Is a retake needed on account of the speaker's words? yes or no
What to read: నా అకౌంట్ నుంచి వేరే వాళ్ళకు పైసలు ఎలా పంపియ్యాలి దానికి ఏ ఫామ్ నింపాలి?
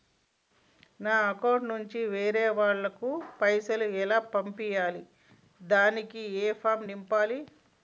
no